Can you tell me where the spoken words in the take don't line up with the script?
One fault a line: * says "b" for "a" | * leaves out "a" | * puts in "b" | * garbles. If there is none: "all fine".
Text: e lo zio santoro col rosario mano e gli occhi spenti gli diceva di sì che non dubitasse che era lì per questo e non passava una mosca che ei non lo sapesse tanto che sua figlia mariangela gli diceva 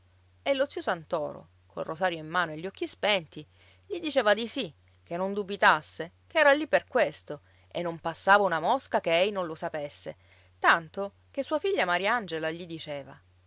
* puts in "in"